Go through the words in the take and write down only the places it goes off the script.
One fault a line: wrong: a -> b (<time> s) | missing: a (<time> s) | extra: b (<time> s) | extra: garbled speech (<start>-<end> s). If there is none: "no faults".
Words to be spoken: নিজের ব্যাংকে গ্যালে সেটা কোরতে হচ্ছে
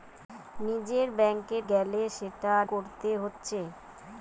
no faults